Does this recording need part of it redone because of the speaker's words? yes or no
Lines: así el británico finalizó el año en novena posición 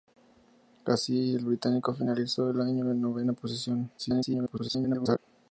yes